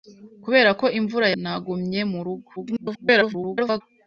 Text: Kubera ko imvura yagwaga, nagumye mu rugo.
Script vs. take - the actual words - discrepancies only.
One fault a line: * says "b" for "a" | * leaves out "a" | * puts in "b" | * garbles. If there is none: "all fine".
* leaves out "yagwaga"
* garbles